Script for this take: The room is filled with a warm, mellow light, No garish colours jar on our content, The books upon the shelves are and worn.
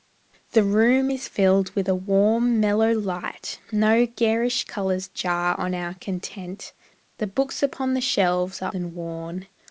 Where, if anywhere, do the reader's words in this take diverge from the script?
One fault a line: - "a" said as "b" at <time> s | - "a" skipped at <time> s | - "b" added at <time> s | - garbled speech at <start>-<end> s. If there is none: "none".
none